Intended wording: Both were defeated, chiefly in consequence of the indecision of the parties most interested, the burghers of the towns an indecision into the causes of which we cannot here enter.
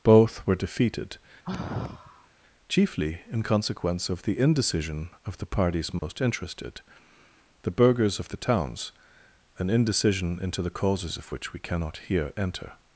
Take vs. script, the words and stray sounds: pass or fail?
fail